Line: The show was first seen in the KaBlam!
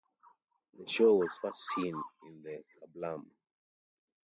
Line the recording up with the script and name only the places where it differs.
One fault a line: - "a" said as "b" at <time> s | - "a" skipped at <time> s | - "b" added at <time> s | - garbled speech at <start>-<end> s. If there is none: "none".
none